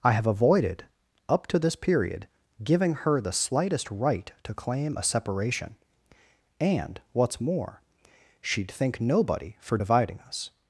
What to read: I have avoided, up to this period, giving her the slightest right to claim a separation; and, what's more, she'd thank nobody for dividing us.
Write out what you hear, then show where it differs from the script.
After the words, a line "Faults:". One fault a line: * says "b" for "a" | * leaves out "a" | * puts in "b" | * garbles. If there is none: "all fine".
I have avoided, up to this period, giving her the slightest right to claim a separation; and, what's more, she'd think nobody for dividing us.
Faults:
* says "think" for "thank"